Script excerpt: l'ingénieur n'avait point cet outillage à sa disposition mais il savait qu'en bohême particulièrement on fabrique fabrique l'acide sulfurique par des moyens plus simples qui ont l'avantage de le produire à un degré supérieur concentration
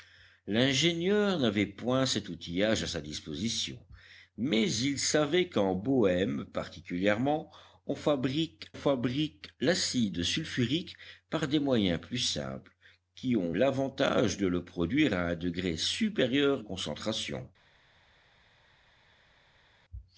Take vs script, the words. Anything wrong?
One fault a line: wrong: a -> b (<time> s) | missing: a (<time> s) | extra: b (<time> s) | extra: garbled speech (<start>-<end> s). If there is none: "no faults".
no faults